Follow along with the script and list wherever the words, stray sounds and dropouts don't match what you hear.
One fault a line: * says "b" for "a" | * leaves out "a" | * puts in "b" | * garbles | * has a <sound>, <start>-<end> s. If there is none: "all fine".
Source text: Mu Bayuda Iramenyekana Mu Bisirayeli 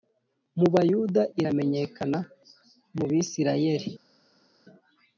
all fine